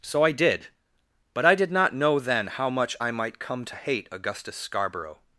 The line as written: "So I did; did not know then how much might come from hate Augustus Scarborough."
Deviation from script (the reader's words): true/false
true